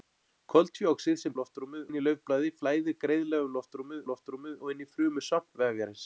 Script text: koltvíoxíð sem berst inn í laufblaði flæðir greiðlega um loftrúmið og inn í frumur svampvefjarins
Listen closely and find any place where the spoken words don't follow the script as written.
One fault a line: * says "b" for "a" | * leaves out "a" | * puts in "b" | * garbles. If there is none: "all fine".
* says "loftrúmið" for "berst"
* puts in "loftrúmið"